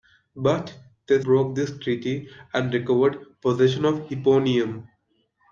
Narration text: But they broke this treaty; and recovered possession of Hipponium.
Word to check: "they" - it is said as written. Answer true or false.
true